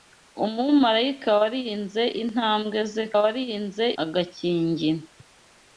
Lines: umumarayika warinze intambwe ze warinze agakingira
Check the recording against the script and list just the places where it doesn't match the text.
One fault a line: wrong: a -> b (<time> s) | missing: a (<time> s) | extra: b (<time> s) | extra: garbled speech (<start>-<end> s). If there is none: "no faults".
no faults